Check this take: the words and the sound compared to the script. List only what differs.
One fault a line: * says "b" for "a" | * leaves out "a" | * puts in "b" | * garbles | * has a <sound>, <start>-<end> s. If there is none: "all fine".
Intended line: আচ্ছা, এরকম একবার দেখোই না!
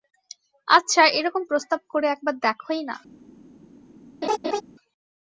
* puts in "প্রস্তাব করে"
* has a laugh, 4.2-4.6 s